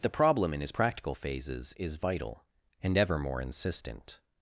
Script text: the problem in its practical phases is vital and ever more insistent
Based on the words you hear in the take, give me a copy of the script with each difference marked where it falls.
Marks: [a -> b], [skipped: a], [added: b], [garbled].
the problem in [its -> his] practical phases is vital and ever more insistent